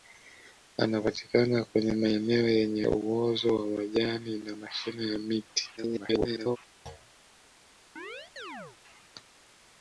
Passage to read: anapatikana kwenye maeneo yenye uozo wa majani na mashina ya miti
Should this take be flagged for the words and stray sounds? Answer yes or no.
yes